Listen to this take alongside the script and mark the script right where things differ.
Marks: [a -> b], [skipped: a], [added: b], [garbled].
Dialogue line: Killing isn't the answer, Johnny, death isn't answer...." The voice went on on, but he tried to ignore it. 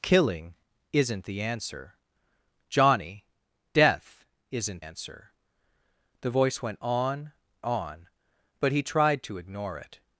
Killing isn't the answer, Johnny, death isn't answer...." The voice went on on, but he tried to ignore it.